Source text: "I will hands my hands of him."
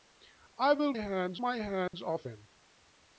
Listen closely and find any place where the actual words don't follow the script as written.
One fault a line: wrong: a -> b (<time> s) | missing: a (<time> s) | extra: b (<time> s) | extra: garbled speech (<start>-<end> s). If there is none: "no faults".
no faults